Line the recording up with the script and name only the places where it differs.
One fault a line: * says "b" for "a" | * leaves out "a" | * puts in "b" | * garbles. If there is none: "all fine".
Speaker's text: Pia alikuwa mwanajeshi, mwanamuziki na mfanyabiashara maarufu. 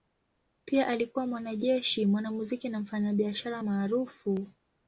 all fine